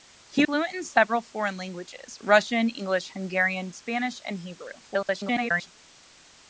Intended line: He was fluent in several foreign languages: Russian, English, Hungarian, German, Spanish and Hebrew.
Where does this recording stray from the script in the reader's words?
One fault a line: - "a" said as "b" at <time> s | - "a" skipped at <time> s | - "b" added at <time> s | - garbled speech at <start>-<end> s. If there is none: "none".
- "was" skipped at 0.5 s
- "German" skipped at 3.7 s
- garbled speech at 4.8-5.7 s